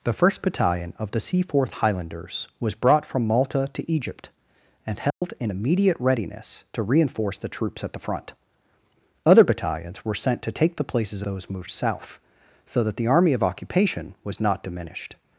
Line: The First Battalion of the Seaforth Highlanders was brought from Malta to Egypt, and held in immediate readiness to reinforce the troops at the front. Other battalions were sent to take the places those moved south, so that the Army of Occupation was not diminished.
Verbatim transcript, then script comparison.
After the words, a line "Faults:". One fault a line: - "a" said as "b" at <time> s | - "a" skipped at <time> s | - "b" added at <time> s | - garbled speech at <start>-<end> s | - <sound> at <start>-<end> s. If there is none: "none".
The First Battalion of the Seaforth Highlanders was brought from Malta to Egypt, and held in immediate readiness to reinforce the troops at the front. Other battalions were sent to take the places those moved south, so that the Army of Occupation was not diminished.
Faults:
- dropout at 5.1-5.2 s